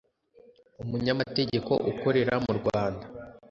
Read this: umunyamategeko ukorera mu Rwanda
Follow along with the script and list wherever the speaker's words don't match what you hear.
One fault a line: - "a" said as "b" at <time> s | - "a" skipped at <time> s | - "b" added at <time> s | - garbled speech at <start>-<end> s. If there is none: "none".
none